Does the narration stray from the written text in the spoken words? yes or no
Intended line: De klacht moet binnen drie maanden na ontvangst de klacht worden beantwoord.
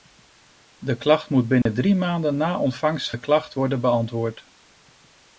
no